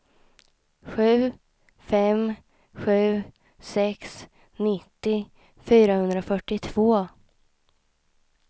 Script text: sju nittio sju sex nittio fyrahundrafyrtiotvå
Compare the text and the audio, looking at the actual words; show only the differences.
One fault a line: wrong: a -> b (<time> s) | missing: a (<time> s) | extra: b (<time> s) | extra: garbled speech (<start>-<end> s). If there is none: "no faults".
wrong: nittio -> fem (1.9 s)